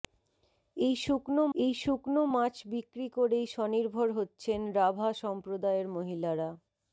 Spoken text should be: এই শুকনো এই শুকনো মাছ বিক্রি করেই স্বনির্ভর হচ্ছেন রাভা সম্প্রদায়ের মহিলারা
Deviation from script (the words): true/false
false